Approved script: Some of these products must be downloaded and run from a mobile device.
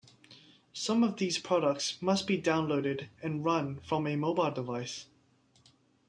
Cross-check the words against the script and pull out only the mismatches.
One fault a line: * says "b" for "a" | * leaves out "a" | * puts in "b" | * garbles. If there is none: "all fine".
all fine